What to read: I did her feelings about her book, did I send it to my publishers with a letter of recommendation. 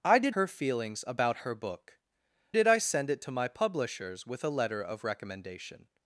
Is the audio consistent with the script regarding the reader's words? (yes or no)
yes